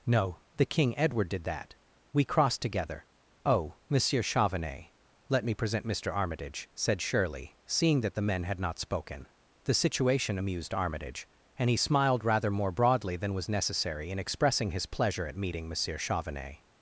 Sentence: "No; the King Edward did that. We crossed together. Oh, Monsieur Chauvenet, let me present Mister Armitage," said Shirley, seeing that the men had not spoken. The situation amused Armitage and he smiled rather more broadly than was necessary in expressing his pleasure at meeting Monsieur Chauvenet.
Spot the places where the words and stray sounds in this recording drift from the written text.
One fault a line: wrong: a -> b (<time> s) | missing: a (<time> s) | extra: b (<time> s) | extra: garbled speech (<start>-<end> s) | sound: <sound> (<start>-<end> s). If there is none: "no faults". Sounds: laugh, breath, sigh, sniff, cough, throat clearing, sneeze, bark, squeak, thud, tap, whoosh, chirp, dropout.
no faults